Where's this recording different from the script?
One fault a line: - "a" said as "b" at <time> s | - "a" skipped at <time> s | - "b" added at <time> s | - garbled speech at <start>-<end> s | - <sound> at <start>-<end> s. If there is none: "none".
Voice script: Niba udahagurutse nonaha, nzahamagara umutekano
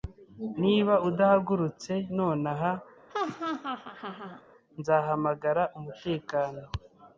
- laugh at 3.1-4.4 s